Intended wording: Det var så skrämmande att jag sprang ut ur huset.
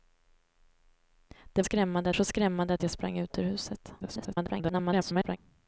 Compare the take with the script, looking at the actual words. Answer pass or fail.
fail